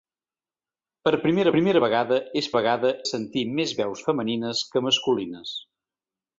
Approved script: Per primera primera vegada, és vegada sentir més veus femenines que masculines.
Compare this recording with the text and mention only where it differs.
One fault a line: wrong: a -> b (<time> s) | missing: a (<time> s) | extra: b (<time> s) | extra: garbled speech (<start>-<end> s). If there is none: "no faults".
no faults